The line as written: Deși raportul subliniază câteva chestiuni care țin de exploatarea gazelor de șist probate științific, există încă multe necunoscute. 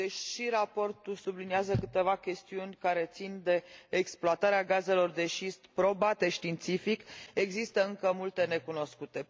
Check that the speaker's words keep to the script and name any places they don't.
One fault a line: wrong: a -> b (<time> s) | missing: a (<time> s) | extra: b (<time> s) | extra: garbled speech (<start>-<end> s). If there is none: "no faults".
no faults